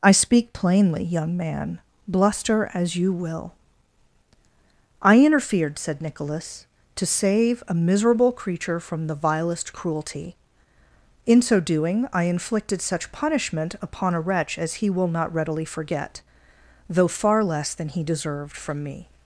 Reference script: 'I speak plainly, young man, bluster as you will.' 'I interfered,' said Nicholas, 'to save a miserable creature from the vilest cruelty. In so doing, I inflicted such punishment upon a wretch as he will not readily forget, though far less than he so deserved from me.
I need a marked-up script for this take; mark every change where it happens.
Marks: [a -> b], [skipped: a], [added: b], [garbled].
'I speak plainly, young man, bluster as you will.' 'I interfered,' said Nicholas, 'to save a miserable creature from the vilest cruelty. In so doing, I inflicted such punishment upon a wretch as he will not readily forget, though far less than he [skipped: so] deserved from me.